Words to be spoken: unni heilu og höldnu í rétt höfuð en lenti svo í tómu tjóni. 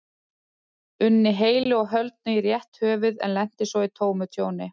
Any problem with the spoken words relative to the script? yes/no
no